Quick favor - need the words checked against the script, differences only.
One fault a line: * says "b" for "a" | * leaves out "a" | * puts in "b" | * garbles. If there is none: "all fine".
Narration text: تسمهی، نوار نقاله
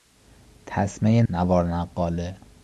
all fine